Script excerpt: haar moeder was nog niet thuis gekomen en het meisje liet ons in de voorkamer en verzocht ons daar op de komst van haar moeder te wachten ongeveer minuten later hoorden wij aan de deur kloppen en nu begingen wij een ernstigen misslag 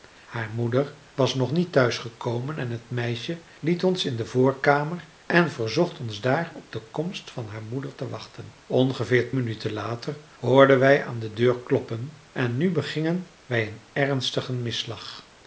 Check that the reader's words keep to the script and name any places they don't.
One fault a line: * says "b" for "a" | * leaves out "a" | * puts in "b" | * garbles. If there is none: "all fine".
all fine